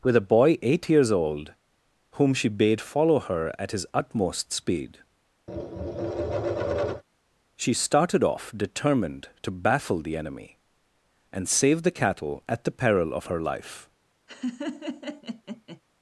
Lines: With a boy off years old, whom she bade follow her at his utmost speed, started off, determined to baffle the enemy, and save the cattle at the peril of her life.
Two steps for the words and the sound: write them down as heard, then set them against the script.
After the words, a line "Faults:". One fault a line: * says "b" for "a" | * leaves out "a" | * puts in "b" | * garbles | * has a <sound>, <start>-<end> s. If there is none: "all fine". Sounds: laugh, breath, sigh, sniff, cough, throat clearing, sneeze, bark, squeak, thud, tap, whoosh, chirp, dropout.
With a boy eight years old, whom she bade follow her at his utmost speed, she started off, determined to baffle the enemy, and save the cattle at the peril of her life.
Faults:
* says "eight" for "off"
* has a tap, 5.5-7.0 s
* puts in "she"
* has a laugh, 14.3-15.8 s